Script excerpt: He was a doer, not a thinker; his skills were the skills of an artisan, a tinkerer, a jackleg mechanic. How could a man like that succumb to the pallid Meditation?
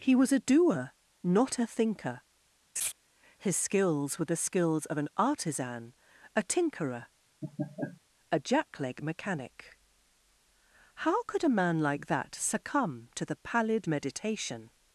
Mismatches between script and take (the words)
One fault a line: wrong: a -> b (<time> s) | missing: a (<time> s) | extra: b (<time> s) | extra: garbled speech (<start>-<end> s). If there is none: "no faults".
no faults